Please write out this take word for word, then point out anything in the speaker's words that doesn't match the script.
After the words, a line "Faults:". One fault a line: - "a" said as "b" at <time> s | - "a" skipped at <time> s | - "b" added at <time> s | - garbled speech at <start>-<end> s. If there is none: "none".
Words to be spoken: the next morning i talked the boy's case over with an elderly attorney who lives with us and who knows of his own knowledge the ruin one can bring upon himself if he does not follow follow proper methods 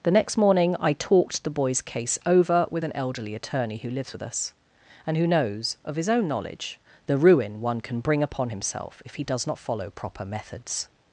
the next morning i talked the boy's case over with an elderly attorney who lives with us and who knows of his own knowledge the ruin one can bring upon himself if he does not follow proper methods
Faults:
- "follow" skipped at 9.9 s